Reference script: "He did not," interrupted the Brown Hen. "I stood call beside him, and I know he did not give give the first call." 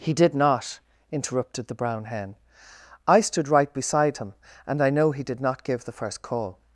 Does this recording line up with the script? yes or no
no